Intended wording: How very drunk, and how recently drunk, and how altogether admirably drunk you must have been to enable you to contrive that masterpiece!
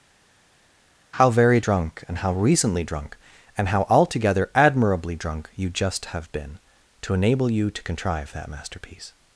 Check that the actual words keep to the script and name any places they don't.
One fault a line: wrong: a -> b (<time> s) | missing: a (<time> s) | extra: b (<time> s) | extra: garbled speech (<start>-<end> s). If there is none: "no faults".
wrong: must -> just (5.7 s)